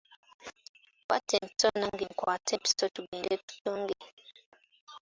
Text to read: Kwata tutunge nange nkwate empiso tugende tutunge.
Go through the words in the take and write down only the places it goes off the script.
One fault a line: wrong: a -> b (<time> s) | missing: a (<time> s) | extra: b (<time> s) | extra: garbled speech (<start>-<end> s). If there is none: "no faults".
wrong: tutunge -> empiso (1.4 s)